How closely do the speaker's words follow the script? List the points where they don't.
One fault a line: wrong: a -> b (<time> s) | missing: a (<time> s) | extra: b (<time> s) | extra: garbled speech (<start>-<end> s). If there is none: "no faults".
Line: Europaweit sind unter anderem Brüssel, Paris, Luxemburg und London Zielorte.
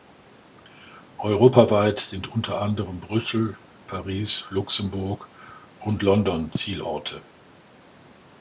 no faults